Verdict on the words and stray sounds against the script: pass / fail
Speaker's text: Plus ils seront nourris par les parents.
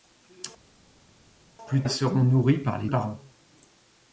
pass